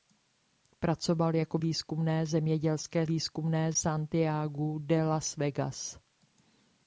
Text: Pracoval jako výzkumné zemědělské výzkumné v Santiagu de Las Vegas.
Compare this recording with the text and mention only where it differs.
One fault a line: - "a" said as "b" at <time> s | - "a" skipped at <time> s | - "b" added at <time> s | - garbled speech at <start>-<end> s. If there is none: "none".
none